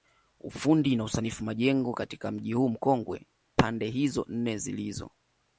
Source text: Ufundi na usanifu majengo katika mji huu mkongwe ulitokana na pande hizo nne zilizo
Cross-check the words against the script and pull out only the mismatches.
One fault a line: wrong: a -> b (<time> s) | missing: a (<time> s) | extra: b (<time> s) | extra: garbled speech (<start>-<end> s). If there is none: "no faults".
missing: ulitokana na (3.3 s)